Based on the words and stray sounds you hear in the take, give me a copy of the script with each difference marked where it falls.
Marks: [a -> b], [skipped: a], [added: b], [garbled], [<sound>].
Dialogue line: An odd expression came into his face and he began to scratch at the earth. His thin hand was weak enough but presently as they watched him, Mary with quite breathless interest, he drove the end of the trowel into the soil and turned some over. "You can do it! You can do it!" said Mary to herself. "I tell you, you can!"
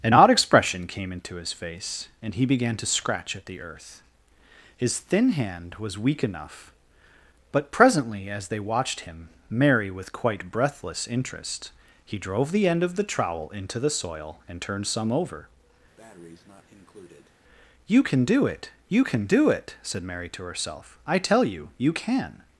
An odd expression came into his face and he began to scratch at the earth. His thin hand was weak enough but presently as they watched him, Mary with quite breathless interest, he drove the end of the trowel into the soil and turned some over. [breath] "You can do it! You can do it!" said Mary to herself. "I tell you, you can!"